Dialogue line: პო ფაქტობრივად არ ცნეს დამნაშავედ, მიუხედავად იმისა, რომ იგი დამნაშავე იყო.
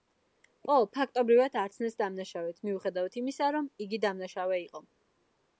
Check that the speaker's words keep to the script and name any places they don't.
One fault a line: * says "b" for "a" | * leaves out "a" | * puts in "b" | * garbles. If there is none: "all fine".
all fine